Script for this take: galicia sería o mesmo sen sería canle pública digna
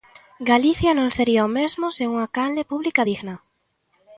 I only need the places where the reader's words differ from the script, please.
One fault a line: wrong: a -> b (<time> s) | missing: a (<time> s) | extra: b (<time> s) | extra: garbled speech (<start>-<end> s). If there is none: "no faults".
extra: non (1.0 s)
wrong: sería -> unha (2.1 s)